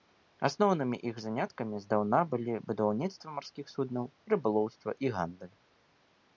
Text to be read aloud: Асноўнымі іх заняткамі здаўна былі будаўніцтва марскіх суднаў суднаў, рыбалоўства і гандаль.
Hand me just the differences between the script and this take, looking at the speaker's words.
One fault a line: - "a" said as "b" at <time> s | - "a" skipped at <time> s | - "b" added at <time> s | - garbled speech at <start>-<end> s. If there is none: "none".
- "суднаў" skipped at 4.0 s